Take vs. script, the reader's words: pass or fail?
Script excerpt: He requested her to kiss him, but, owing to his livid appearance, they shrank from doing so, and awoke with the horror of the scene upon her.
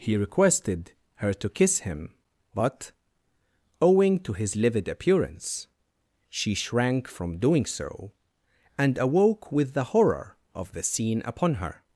fail